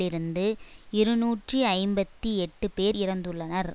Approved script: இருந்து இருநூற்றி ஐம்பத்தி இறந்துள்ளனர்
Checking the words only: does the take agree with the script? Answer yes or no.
no